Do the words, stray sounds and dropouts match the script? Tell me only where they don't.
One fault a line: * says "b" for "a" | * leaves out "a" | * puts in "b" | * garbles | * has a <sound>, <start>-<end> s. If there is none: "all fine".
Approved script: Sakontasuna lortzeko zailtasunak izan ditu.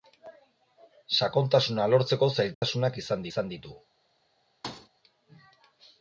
* has a dropout, 2.5-2.6 s
* puts in "izan"
* has a thud, 4.6-4.9 s